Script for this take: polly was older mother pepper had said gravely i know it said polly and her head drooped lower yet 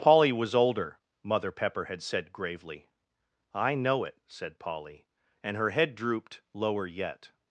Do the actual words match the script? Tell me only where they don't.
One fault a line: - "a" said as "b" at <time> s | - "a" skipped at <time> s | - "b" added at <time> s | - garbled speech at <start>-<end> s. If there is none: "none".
none